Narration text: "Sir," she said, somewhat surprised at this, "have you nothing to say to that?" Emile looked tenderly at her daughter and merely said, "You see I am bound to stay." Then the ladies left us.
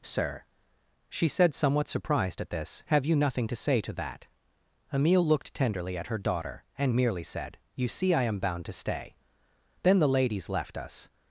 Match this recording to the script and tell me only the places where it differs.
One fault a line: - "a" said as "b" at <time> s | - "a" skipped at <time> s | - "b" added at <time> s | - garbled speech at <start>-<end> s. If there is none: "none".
none